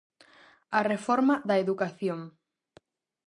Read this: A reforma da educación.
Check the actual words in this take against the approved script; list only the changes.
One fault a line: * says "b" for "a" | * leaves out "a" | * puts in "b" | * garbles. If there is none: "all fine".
all fine